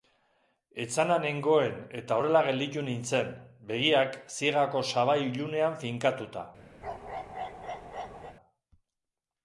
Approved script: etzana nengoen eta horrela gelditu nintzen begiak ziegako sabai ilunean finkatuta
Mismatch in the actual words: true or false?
false